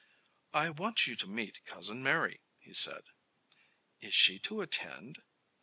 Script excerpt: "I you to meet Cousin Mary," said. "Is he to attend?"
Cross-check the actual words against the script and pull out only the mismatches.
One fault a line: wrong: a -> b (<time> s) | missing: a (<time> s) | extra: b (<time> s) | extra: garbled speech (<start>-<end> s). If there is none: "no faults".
extra: want (0.7 s)
extra: he (2.6 s)
wrong: he -> she (4.1 s)